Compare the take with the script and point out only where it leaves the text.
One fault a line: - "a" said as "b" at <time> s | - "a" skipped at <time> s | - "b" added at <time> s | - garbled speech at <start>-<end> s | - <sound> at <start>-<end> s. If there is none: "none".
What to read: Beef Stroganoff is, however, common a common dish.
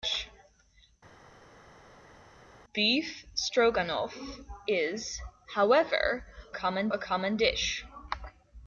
none